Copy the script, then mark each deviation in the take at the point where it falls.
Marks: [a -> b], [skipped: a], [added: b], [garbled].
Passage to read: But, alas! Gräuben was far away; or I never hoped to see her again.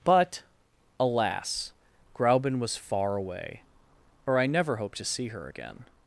But, alas! Gräuben was far away; or I never hoped to see her again.